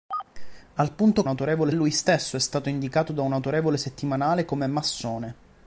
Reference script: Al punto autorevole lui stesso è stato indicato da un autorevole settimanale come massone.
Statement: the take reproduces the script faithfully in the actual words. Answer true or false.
true